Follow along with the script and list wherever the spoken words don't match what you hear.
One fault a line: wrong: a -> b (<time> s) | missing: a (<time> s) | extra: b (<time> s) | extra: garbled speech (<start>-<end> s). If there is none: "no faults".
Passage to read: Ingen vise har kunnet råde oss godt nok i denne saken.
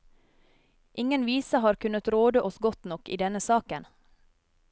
no faults